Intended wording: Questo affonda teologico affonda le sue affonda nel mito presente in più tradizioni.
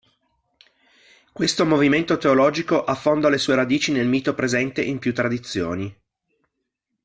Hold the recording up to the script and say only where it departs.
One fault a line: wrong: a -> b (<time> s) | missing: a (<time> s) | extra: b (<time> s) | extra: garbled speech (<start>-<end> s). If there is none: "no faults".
wrong: affonda -> movimento (1.6 s)
wrong: affonda -> radici (3.5 s)